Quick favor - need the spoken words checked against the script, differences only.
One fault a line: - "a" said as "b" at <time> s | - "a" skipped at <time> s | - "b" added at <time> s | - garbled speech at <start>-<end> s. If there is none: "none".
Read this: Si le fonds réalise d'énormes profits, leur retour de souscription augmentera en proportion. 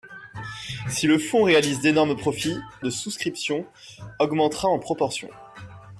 - "leur retour" skipped at 2.6 s